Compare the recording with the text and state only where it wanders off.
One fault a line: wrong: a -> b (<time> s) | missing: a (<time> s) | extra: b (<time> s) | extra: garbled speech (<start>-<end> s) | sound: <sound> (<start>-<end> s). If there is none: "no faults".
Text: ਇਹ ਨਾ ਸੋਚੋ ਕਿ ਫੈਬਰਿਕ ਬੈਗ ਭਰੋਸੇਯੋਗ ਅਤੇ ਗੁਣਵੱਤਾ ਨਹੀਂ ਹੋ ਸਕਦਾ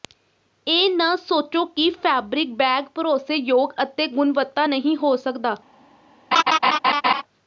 sound: laugh (6.3-7.2 s)